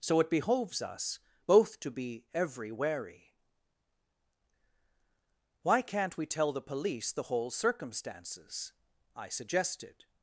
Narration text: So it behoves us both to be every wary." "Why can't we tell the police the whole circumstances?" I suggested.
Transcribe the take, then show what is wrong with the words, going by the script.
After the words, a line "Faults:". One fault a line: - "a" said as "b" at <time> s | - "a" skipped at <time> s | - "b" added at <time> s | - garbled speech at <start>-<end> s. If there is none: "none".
So it behoves us both to be every wary." "Why can't we tell the police the whole circumstances?" I suggested.
Faults:
none